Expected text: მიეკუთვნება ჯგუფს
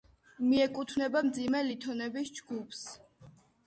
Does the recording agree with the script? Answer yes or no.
no